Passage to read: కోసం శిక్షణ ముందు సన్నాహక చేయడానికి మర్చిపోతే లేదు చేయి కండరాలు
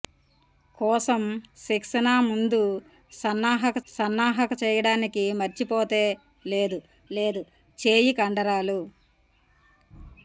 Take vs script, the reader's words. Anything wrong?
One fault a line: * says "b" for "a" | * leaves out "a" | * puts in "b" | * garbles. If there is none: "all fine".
* puts in "సన్నాహక"
* puts in "లేదు"